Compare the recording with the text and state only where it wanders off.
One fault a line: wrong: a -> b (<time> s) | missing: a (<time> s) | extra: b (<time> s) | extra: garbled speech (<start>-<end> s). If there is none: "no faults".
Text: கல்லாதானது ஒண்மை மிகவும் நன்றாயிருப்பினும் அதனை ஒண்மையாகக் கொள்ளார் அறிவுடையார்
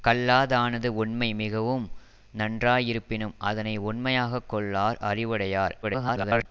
extra: garbled speech (5.8-6.5 s)